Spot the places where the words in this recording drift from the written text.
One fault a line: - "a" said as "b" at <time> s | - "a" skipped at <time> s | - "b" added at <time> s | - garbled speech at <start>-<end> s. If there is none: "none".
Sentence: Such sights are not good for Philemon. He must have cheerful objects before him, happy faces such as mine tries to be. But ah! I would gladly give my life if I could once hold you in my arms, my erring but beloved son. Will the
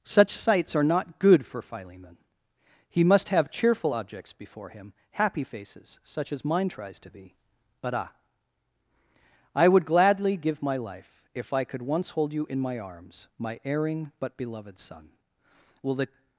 none